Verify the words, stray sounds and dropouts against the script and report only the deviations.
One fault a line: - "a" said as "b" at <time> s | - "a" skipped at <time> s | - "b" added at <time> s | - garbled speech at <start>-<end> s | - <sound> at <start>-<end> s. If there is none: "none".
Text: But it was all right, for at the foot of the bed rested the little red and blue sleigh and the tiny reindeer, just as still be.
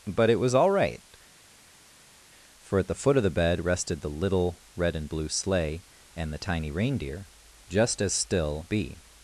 none